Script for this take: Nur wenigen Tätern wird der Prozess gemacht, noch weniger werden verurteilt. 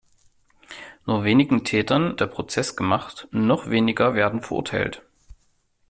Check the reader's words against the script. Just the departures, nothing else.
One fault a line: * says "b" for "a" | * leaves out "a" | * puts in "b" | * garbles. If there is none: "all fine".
* leaves out "wird"